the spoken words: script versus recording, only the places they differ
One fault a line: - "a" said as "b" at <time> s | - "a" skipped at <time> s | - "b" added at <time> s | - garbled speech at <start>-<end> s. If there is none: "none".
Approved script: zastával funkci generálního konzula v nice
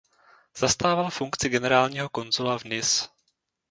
none